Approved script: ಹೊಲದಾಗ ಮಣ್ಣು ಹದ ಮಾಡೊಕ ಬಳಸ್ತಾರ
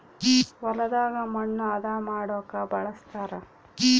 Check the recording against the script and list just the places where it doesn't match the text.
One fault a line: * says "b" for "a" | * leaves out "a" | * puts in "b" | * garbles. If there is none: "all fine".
all fine